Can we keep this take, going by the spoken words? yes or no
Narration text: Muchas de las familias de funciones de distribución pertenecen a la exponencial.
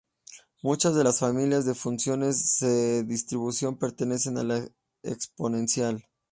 yes